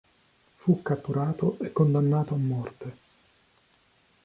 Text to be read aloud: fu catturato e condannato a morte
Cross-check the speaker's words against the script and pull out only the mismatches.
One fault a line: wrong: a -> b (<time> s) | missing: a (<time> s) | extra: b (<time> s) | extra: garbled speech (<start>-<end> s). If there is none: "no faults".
no faults